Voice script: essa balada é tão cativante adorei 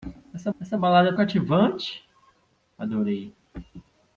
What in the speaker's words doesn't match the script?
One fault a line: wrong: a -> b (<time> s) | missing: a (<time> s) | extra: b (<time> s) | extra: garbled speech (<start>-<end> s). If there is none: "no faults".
extra: essa (0.6 s)
missing: tão (1.1 s)